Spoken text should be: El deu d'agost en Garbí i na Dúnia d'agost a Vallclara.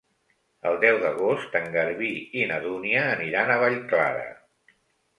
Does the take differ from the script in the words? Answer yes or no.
yes